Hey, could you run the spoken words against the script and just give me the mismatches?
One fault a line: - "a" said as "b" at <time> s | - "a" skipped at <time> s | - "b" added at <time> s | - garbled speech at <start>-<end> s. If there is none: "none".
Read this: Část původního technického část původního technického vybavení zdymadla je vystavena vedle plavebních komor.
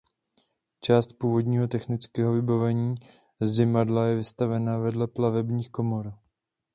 - "část původního technického" skipped at 2.3 s